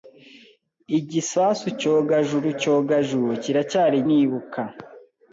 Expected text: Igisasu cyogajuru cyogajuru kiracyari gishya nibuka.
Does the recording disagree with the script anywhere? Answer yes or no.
yes